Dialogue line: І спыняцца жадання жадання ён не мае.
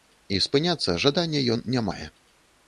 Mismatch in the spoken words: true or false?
true